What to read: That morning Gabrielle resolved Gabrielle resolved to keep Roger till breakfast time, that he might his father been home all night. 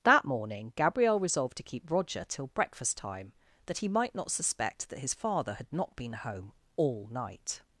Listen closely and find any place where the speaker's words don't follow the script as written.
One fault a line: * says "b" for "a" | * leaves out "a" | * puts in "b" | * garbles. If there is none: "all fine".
* leaves out "Gabrielle resolved"
* puts in "not suspect that"
* puts in "had not"